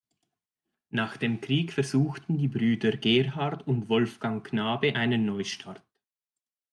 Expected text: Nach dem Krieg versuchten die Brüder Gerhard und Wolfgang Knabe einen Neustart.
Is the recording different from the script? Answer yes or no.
no